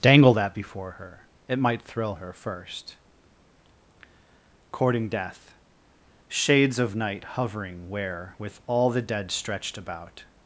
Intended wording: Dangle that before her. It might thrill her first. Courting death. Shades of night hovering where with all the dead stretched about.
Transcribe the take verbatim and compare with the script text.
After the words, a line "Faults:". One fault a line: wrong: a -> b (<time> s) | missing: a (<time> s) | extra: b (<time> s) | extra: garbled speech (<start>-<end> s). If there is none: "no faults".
Dangle that before her. It might thrill her first. Courting death. Shades of night hovering where with all the dead stretched about.
Faults:
no faults